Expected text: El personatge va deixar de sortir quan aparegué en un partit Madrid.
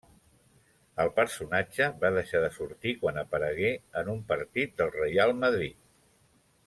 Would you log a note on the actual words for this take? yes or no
yes